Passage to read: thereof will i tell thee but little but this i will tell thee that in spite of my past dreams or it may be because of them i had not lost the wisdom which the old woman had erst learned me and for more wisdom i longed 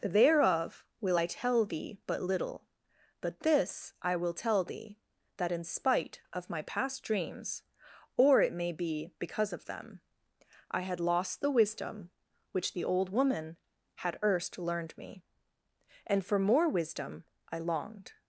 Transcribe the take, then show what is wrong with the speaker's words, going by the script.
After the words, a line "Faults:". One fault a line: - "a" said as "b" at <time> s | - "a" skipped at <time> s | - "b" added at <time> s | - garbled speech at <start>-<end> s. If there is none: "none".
thereof will i tell thee but little but this i will tell thee that in spite of my past dreams or it may be because of them i had lost the wisdom which the old woman had erst learned me and for more wisdom i longed
Faults:
- "not" skipped at 11.0 s